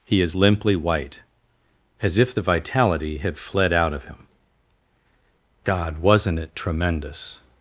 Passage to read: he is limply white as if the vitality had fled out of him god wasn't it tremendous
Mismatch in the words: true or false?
false